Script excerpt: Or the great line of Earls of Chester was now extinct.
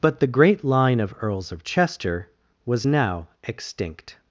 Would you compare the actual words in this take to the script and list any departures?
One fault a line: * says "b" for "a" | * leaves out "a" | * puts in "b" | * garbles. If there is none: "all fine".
* says "But" for "Or"